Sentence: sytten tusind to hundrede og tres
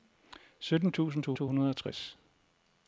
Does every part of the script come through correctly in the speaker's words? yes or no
no